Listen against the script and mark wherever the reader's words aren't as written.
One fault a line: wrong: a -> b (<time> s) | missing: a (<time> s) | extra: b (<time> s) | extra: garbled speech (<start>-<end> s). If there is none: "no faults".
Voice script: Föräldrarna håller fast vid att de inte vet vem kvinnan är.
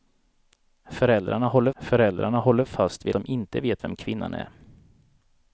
extra: föräldrarna håller (1.8 s)
missing: att (3.2 s)